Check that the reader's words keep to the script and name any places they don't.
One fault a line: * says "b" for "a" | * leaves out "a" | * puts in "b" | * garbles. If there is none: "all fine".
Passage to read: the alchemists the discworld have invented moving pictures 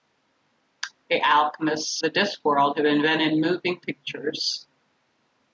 all fine